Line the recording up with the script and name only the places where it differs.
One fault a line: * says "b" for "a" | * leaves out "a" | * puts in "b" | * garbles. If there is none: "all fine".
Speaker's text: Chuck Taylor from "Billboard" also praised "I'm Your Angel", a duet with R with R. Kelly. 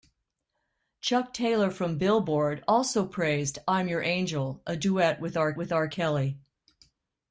all fine